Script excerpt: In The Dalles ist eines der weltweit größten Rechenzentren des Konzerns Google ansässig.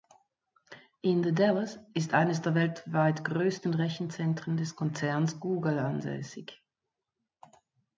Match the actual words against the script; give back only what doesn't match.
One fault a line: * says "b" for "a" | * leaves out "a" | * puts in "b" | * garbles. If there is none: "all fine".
all fine